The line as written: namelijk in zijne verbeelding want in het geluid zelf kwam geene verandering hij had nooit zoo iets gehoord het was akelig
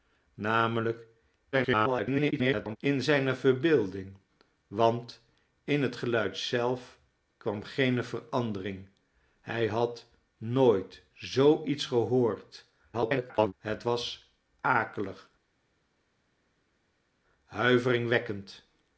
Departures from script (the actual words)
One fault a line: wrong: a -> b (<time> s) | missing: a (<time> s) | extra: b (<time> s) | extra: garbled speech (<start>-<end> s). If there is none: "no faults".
extra: garbled speech (1.5-2.8 s)
extra: garbled speech (12.9-13.5 s)